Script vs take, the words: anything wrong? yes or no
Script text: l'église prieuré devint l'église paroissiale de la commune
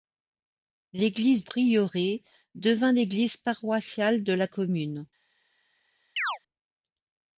no